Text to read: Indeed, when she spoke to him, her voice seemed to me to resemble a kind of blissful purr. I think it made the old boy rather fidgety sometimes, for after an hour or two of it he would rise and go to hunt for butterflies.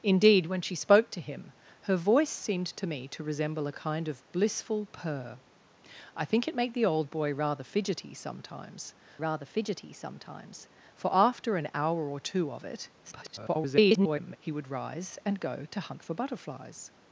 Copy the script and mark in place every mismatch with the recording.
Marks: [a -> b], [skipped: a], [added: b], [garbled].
Indeed, when she spoke to him, her voice seemed to me to resemble a kind of blissful purr. I think it made the old boy rather fidgety sometimes, [added: rather fidgety sometimes] for after an hour or two of it [garbled] he would rise and go to hunt for butterflies.